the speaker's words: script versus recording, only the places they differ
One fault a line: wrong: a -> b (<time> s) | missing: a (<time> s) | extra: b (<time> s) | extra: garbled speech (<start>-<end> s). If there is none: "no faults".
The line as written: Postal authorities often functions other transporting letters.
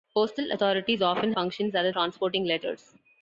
no faults